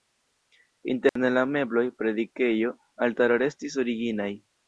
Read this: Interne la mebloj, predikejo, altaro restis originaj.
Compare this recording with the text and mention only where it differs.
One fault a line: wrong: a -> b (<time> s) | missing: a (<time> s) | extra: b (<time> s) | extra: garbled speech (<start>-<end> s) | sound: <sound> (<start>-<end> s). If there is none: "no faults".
sound: dropout (1.1-1.2 s)